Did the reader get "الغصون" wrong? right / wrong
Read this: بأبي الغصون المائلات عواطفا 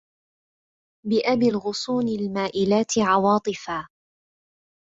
right